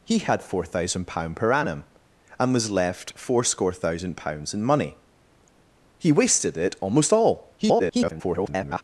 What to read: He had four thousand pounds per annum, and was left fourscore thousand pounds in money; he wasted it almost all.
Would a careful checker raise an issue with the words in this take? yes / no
yes